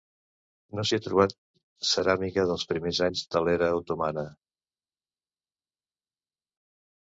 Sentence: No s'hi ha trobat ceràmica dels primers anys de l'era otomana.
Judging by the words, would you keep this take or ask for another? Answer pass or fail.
pass